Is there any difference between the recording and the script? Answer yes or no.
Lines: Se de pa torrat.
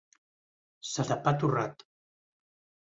no